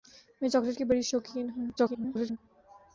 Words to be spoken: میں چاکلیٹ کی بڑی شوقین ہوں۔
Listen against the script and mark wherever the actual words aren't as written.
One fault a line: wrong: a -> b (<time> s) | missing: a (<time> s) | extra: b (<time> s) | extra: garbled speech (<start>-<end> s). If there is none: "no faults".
extra: garbled speech (1.8-2.4 s)